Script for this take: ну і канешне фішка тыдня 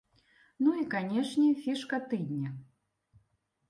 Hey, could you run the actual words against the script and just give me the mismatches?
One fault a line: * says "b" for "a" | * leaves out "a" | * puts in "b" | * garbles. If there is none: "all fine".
all fine